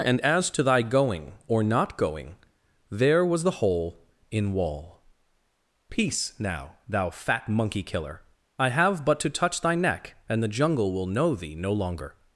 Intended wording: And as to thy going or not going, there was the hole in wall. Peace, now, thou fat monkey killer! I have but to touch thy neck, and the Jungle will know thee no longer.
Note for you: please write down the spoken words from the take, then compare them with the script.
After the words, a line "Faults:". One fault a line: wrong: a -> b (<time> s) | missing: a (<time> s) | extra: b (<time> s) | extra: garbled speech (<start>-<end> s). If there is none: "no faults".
And as to thy going or not going, there was the hole in wall. Peace, now, thou fat monkey killer! I have but to touch thy neck, and the Jungle will know thee no longer.
Faults:
no faults